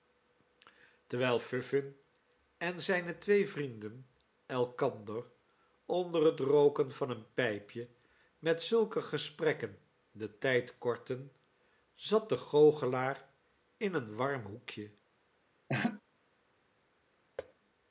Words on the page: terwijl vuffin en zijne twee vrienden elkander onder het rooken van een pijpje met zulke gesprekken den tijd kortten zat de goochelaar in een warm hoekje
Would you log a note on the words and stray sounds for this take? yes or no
yes